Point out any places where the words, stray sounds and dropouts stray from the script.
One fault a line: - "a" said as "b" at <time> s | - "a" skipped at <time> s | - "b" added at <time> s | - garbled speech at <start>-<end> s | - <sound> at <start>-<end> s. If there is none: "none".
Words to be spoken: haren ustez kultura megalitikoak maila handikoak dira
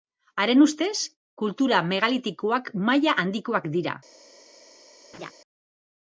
- laugh at 5.1-5.3 s